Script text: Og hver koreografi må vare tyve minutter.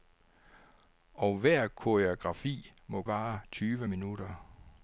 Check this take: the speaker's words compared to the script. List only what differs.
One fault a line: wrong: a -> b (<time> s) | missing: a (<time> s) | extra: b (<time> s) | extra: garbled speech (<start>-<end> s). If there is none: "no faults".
no faults